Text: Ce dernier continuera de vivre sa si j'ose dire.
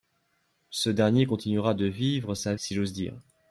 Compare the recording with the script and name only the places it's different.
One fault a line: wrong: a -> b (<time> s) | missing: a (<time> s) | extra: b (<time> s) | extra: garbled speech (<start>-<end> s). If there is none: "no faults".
no faults